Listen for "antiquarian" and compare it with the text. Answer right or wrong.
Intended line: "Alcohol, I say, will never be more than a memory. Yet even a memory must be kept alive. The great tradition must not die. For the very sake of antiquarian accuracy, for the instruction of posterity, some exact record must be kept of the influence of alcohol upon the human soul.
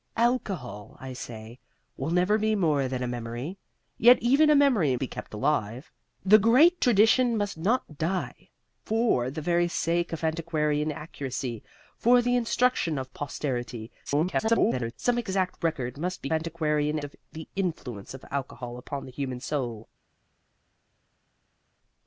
right